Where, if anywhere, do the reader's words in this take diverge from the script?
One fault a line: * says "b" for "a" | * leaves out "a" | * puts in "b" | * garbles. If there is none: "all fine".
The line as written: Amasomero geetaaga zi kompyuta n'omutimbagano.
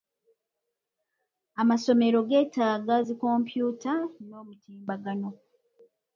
all fine